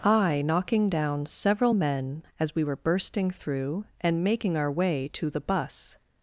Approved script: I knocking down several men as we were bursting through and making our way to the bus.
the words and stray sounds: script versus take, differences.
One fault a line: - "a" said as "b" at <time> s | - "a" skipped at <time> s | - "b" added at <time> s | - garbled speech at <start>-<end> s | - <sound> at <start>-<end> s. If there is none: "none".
none